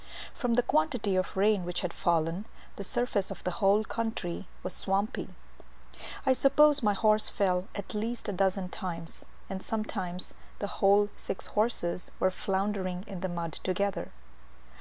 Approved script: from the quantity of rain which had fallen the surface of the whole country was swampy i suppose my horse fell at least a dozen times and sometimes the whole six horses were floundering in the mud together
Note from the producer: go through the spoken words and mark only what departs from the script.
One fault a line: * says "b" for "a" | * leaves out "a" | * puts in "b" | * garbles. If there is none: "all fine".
all fine